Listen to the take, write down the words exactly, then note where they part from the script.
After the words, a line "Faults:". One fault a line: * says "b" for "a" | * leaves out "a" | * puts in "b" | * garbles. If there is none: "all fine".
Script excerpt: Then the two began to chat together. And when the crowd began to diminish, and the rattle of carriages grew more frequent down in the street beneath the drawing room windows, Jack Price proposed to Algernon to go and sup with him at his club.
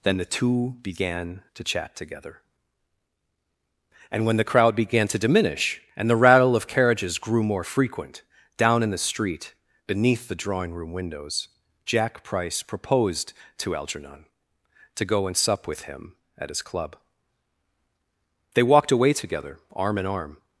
Then the two began to chat together. And when the crowd began to diminish, and the rattle of carriages grew more frequent down in the street beneath the drawing room windows, Jack Price proposed to Algernon to go and sup with him at his club. They walked away together, arm in arm
Faults:
* puts in "They walked away together arm in arm"